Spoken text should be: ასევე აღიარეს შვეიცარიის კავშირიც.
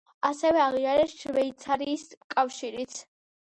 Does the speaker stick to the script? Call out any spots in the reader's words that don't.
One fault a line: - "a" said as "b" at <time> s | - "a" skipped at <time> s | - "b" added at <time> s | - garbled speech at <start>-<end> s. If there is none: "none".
none